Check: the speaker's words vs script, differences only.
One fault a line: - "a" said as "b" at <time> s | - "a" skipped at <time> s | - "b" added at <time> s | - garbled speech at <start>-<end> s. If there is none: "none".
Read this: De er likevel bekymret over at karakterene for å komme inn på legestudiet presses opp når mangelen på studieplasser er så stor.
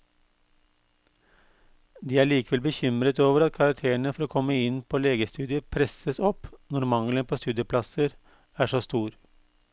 none